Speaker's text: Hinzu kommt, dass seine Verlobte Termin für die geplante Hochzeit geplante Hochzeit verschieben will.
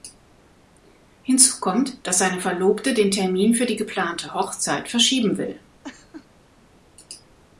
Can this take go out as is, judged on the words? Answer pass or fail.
fail